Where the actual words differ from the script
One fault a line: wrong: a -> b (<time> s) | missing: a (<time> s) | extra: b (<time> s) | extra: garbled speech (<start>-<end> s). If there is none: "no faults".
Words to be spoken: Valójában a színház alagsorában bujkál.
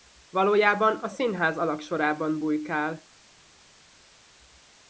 no faults